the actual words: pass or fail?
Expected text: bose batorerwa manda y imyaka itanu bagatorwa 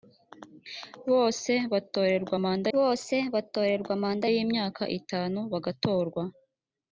fail